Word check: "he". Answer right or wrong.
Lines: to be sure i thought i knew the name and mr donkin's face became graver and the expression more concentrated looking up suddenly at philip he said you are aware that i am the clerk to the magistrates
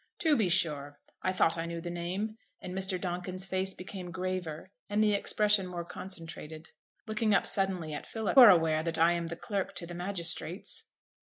wrong